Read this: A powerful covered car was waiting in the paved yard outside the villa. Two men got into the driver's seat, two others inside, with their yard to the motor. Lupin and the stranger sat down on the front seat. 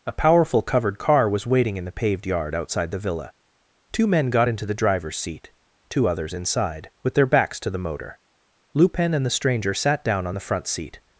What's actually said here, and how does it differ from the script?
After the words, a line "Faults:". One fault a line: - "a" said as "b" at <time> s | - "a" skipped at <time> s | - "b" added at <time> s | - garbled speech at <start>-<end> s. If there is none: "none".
A powerful covered car was waiting in the paved yard outside the villa. Two men got into the driver's seat, two others inside, with their backs to the motor. Lupin and the stranger sat down on the front seat.
Faults:
- "yard" said as "backs" at 7.3 s